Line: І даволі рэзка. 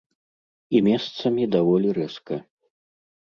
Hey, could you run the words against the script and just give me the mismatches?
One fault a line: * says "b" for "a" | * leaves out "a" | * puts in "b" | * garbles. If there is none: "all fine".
* puts in "месцамі"